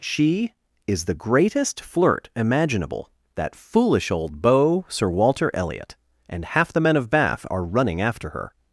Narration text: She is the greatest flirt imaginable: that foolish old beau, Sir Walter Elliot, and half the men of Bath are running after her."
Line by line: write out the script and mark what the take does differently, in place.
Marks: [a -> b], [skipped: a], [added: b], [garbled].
She is the greatest flirt imaginable: that foolish old beau, Sir Walter Elliot, and half the men of Bath are running after her."